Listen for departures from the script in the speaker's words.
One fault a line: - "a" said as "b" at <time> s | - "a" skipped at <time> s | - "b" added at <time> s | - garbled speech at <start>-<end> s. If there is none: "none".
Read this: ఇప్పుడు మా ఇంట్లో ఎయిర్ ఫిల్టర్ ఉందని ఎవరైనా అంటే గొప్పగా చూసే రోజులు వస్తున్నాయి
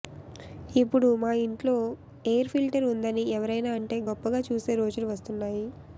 none